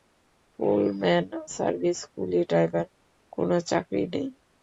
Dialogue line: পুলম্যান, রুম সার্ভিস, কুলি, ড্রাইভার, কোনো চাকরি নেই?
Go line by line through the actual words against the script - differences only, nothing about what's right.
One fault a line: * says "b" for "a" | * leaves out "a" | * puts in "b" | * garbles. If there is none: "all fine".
* leaves out "রুম"